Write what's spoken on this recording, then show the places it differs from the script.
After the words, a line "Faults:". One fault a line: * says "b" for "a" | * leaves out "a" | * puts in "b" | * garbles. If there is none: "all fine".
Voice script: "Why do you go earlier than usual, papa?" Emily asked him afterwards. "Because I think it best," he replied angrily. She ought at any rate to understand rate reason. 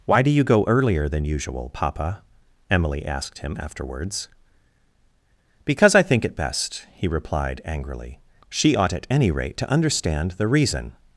"Why do you go earlier than usual, papa?" Emily asked him afterwards. "Because I think it best," he replied angrily. She ought at any rate to understand the reason.
Faults:
* says "the" for "rate"